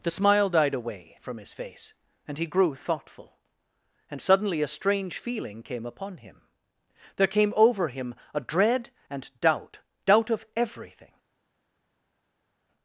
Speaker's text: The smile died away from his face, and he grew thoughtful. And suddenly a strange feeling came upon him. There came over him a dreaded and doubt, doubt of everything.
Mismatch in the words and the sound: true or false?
true